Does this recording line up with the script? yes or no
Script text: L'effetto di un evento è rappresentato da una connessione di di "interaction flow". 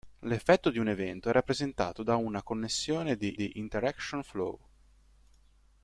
yes